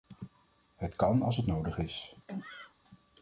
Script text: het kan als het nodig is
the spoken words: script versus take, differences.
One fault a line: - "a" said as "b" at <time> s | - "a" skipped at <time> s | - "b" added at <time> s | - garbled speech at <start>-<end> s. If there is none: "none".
none